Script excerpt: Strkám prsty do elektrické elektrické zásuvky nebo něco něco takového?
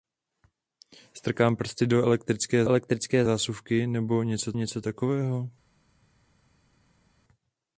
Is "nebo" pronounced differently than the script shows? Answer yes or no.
no